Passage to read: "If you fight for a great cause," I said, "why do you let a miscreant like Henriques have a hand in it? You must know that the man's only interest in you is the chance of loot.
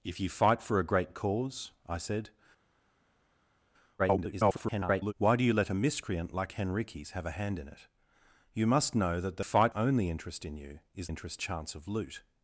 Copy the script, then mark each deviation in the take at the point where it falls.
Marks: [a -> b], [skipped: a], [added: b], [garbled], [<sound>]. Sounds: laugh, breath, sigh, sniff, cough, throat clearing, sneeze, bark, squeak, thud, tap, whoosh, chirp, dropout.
"If you fight for a great cause," I said, [garbled] "why do you let a miscreant like Henriques have a hand in it? You must know that the [man's -> fight] only interest in you is [the -> interest] chance of loot.